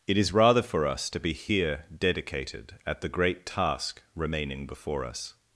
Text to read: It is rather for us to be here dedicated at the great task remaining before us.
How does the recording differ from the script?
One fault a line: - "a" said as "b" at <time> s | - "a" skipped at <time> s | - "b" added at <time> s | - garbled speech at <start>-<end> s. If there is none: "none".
none